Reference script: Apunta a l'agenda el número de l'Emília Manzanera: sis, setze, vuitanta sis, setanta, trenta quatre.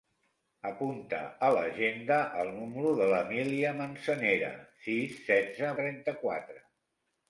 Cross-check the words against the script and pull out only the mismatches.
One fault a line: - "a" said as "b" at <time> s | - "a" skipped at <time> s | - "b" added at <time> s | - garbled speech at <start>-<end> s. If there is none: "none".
- "vuitanta sis setanta" skipped at 5.7 s